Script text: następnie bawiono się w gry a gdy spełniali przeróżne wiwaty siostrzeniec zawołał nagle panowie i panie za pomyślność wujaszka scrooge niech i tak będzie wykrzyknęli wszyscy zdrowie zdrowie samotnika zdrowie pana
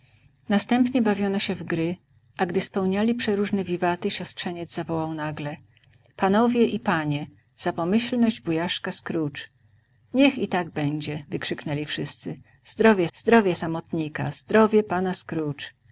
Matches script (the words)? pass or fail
pass